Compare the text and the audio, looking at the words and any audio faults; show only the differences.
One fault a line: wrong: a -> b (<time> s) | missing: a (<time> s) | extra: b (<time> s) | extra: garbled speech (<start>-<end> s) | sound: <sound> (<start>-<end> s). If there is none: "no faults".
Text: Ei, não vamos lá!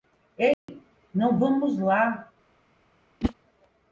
sound: dropout (0.5-0.7 s)
sound: whoosh (3.2-3.3 s)